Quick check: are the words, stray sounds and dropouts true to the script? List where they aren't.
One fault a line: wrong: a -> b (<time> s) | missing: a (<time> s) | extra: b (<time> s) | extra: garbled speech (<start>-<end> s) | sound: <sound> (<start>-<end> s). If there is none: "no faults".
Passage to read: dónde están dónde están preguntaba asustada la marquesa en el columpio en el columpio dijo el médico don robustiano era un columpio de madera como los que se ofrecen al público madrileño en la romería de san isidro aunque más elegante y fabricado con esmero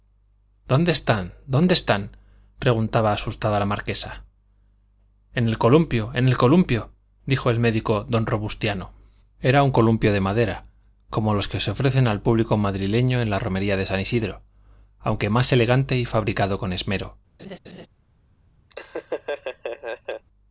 sound: laugh (17.4-17.9 s)
sound: laugh (18.7-20.2 s)